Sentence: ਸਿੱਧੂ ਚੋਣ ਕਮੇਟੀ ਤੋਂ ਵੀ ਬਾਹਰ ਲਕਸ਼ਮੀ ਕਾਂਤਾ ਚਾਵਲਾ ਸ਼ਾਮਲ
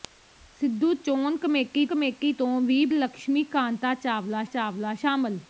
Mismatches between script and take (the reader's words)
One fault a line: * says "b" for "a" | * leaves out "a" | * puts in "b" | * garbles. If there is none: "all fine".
* puts in "ਕਮੇਟੀ"
* leaves out "ਬਾਹਰ"
* puts in "ਚਾਵਲਾ"